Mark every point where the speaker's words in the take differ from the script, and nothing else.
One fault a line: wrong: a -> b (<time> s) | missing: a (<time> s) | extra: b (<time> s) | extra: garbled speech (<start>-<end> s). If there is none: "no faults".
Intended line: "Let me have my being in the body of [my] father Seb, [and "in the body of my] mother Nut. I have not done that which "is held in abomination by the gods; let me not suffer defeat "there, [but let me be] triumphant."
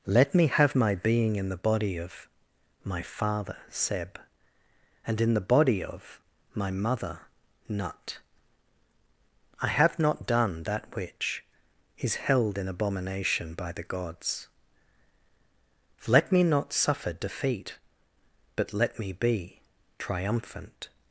missing: there (17.8 s)